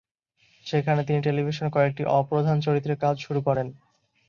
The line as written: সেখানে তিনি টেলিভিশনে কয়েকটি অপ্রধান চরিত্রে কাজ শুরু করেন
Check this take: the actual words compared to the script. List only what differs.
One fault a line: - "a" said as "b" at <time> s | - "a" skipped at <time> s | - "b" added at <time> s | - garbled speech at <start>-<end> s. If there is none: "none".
none